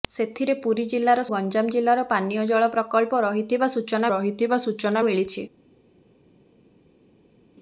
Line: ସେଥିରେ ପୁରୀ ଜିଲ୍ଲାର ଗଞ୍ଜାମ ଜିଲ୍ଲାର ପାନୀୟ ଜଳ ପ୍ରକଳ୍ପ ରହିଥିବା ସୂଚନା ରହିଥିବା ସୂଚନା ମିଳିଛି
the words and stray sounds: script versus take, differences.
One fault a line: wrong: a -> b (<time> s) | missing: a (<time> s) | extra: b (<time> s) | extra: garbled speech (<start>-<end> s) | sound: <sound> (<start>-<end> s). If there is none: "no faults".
no faults